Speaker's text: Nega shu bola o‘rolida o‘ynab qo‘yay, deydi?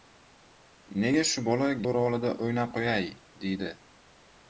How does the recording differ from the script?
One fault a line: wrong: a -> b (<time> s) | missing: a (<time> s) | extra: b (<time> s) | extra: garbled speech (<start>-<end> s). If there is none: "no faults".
no faults